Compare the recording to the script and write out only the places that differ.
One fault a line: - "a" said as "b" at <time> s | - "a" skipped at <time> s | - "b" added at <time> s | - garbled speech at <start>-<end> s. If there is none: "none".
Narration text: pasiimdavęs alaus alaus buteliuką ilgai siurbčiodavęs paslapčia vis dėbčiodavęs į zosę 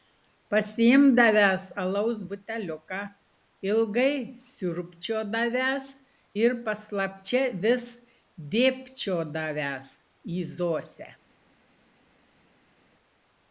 - "alaus" skipped at 2.2 s
- "ir" added at 6.4 s